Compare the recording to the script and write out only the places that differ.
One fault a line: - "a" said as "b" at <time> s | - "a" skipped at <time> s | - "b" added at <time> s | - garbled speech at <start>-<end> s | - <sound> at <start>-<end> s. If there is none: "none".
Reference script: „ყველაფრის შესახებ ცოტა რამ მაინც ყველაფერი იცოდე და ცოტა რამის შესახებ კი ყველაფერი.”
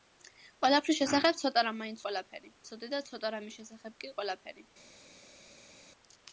none